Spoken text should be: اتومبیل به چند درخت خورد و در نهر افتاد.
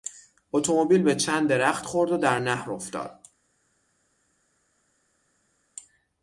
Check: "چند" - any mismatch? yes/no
no